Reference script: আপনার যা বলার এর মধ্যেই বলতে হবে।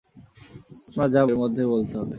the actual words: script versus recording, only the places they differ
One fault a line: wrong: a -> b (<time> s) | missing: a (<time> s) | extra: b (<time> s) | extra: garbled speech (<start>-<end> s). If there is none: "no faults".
missing: বলার (1.2 s)